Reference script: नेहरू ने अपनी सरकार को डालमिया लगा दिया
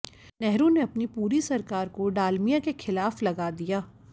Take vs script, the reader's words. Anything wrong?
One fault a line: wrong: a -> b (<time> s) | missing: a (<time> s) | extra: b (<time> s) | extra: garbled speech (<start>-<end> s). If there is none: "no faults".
extra: पूरी (1.2 s)
extra: के खिलाफ (2.6 s)